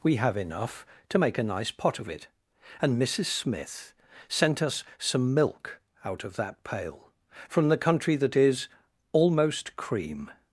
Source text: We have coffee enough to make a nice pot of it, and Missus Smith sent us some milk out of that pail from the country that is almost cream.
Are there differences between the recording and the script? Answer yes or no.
yes